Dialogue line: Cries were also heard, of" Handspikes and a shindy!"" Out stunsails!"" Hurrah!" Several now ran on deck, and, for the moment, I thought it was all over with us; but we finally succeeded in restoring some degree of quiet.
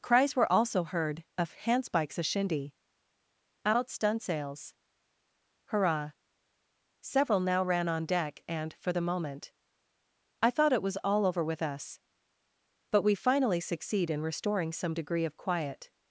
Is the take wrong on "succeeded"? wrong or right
wrong